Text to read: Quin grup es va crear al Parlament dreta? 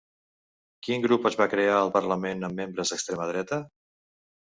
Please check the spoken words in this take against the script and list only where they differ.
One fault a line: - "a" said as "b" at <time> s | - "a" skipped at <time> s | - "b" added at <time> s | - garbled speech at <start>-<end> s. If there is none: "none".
- "amb membres d'extrema" added at 2.5 s